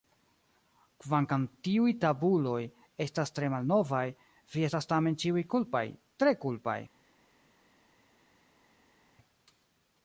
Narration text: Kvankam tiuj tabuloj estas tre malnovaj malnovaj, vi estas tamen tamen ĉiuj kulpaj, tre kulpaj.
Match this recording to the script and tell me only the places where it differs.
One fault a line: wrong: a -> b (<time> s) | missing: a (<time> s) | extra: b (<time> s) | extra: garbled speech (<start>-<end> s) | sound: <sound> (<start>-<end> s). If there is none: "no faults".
missing: malnovaj (4.0 s)
missing: tamen (5.2 s)